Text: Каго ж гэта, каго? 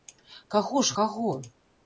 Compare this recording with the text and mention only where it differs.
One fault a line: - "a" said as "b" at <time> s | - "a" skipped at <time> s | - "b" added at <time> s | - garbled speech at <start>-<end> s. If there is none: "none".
- "гэта" skipped at 1.0 s